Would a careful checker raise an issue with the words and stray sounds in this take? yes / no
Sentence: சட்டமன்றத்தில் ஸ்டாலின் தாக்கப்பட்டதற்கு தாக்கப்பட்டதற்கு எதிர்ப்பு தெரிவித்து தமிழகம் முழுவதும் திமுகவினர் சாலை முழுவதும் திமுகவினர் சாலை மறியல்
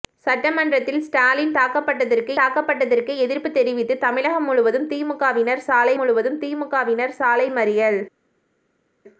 no